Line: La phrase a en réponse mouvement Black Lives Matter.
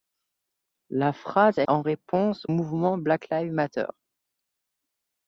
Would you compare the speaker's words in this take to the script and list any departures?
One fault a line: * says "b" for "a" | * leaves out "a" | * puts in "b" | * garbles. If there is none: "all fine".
all fine